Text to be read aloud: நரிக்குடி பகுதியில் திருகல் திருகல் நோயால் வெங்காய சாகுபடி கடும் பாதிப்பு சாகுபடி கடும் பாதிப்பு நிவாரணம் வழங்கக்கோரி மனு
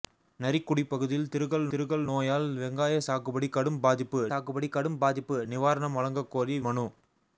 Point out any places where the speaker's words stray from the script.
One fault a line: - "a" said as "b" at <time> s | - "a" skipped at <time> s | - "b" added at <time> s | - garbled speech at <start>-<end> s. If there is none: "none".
none